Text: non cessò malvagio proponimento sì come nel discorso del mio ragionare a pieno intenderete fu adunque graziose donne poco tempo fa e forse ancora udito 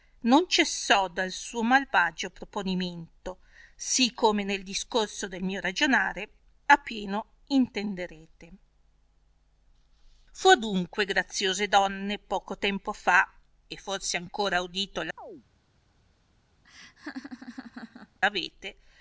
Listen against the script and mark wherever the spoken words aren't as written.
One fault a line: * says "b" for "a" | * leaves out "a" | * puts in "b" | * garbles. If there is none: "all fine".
* puts in "dal suo"